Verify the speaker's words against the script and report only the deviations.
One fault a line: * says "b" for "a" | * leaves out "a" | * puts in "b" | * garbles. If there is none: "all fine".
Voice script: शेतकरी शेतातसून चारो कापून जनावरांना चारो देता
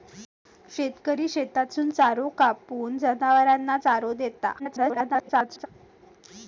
* garbles